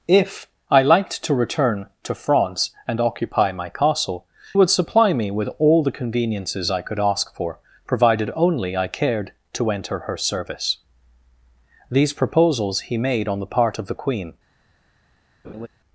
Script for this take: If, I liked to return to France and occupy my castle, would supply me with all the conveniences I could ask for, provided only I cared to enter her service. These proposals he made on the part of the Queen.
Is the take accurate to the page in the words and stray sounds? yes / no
no